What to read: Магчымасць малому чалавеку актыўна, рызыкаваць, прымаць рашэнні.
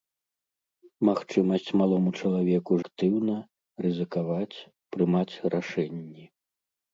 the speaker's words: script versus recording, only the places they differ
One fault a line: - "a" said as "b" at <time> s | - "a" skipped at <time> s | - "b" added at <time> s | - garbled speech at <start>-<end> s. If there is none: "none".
none